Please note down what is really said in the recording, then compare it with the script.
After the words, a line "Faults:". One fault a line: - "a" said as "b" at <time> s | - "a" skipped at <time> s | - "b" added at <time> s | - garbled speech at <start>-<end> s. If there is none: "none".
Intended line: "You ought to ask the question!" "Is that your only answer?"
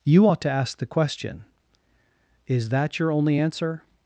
"You ought to ask the question!" "Is that your only answer?"
Faults:
none